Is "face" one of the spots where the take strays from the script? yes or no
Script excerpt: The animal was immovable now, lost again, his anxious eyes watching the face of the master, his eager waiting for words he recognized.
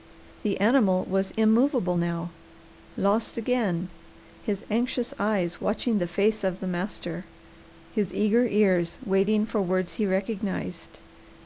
no